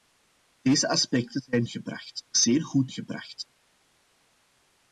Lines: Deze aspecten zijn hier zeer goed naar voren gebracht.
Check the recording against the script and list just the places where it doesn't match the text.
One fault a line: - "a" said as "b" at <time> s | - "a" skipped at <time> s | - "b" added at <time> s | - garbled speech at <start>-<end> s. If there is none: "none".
- "hier" said as "gebracht" at 1.7 s
- "naar voren" skipped at 2.9 s